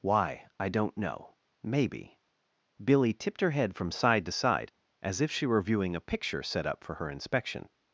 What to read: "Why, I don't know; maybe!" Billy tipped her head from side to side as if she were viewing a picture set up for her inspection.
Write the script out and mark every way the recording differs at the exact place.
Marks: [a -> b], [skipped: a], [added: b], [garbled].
"Why, I don't know; maybe!" Billy tipped her head from side to side as if she were viewing a picture set up for her inspection.